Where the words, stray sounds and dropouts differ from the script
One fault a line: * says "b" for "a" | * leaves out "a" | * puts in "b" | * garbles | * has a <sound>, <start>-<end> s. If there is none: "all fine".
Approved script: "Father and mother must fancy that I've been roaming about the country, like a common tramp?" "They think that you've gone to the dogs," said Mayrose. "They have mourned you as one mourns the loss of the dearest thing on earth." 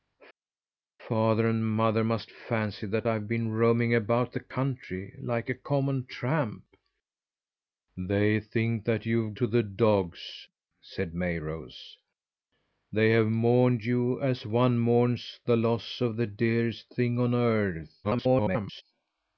* leaves out "gone"
* garbles